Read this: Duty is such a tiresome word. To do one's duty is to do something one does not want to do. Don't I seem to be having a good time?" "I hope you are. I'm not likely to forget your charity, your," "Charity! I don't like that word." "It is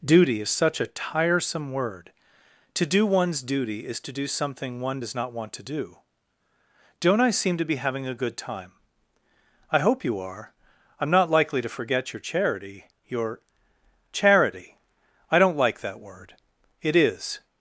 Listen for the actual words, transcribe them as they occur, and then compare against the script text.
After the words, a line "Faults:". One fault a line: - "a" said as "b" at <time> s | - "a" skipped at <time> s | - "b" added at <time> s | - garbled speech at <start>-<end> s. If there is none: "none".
Duty is such a tiresome word. To do one's duty is to do something one does not want to do. Don't I seem to be having a good time?" "I hope you are. I'm not likely to forget your charity, your," "Charity! I don't like that word." "It is
Faults:
none